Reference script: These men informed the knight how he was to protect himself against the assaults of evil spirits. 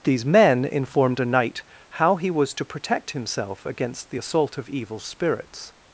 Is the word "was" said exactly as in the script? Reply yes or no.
yes